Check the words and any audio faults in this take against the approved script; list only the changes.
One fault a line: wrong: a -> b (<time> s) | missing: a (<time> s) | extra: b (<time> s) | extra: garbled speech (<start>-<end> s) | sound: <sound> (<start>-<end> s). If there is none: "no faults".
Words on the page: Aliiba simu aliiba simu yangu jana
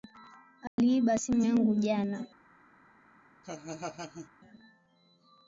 sound: dropout (0.7-0.8 s)
missing: aliiba simu (1.5 s)
sound: laugh (3.4-4.3 s)